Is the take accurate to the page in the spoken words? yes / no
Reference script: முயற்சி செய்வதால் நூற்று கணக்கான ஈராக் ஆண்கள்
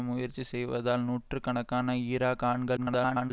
no